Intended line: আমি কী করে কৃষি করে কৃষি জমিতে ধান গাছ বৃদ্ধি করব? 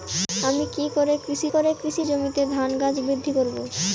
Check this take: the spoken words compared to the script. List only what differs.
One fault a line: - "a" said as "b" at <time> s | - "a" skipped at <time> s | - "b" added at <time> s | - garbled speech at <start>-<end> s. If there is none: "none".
none